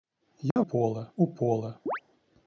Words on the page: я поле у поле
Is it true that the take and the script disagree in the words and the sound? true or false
true